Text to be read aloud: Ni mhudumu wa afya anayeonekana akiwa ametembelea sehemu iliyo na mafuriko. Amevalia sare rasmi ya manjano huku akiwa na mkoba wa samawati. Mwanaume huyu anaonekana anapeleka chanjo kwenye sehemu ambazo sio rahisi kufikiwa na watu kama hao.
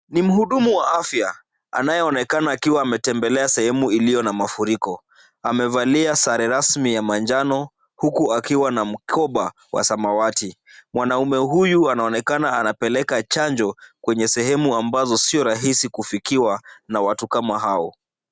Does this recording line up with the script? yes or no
yes